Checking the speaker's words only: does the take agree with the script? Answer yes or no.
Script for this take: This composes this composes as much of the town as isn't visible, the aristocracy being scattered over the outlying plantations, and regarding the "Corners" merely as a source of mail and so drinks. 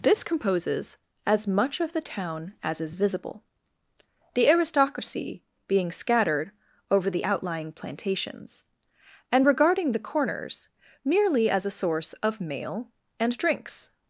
no